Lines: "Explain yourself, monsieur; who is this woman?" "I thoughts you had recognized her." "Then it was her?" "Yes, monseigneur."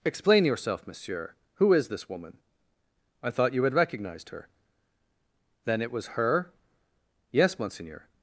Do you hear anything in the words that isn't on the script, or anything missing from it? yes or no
yes